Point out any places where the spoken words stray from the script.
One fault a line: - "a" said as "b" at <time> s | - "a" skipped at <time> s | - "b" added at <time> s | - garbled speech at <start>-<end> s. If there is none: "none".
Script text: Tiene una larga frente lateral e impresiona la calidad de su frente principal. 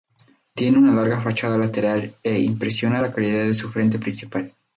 - "frente" said as "fachada" at 1.2 s